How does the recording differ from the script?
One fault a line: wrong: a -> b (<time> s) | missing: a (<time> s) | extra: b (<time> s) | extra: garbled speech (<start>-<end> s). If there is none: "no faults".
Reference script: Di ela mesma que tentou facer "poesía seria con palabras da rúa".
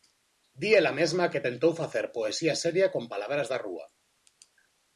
no faults